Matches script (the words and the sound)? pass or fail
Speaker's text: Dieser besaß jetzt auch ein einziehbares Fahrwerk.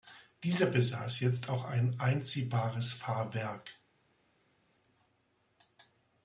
pass